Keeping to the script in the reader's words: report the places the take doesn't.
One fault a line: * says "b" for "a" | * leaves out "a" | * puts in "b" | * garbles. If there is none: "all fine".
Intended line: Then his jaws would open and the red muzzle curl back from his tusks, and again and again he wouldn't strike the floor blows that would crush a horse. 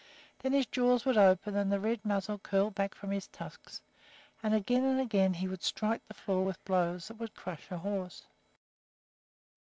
* says "would" for "wouldn't"
* puts in "with"